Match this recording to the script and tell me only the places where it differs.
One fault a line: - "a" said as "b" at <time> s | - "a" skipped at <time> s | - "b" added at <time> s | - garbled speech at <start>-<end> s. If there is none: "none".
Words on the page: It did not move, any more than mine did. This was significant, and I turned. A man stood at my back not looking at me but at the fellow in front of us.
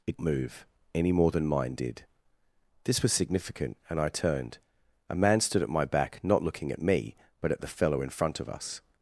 - "did not" skipped at 0.2 s